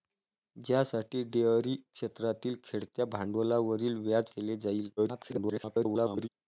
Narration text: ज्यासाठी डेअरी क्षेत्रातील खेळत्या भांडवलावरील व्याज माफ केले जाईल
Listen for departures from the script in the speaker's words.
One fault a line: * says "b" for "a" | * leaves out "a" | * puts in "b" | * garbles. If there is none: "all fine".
* leaves out "माफ"
* garbles